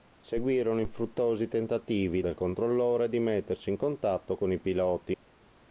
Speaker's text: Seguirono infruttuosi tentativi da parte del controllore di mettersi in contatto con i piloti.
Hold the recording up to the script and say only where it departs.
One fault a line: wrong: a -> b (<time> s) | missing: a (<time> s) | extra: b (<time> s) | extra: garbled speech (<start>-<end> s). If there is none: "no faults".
missing: da parte (2.2 s)